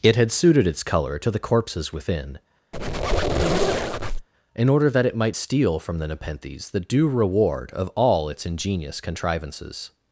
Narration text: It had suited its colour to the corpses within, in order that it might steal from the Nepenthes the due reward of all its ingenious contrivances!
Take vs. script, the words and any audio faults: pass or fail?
fail